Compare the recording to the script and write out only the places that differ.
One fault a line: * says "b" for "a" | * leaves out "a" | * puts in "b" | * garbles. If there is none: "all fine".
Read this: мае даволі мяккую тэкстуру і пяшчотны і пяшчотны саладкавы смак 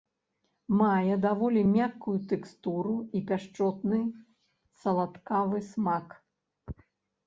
* leaves out "і пяшчотны"